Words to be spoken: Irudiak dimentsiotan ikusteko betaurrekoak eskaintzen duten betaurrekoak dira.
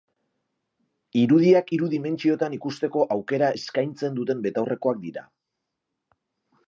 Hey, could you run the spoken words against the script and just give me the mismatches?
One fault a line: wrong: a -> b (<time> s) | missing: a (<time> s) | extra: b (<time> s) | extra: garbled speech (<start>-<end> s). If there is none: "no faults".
extra: hiru (1.8 s)
wrong: betaurrekoak -> aukera (3.2 s)